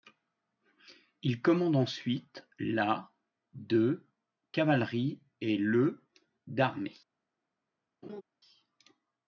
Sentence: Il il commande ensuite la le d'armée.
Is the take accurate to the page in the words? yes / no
no